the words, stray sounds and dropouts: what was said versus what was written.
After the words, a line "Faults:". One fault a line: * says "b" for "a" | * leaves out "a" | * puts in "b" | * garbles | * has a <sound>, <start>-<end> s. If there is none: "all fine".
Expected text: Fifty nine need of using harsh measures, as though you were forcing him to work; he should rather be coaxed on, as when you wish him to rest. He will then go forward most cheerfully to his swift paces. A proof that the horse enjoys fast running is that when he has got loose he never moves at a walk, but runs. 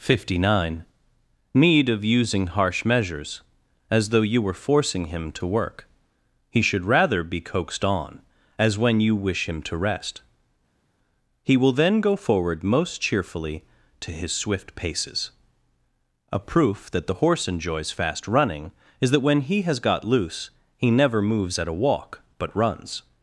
Fifty nine need of using harsh measures, as though you were forcing him to work; he should rather be coaxed on, as when you wish him to rest. He will then go forward most cheerfully to his swift paces. A proof that the horse enjoys fast running is that when he has got loose he never moves at a walk, but runs.
Faults:
all fine